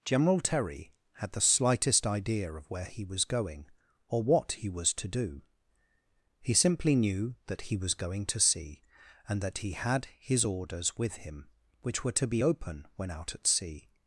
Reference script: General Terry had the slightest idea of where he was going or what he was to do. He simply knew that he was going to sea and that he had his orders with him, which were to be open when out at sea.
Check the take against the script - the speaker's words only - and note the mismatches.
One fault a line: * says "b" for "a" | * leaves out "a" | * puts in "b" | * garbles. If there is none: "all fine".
all fine